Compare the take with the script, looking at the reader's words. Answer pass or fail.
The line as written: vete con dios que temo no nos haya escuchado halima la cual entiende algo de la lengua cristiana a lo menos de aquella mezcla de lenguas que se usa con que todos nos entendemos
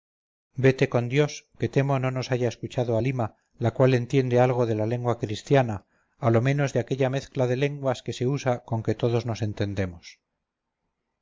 pass